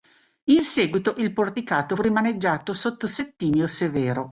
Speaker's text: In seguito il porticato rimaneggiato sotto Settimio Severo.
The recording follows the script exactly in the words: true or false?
true